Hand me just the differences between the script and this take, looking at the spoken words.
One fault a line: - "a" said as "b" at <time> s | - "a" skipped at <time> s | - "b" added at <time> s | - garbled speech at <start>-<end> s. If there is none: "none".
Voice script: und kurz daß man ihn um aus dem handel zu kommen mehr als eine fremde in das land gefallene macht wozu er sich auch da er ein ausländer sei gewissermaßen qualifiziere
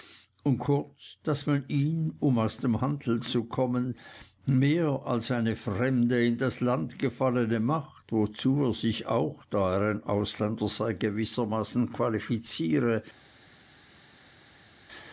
none